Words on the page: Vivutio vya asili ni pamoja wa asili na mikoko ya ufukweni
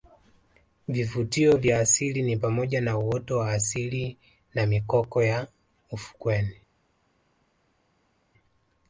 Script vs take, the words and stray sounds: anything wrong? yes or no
yes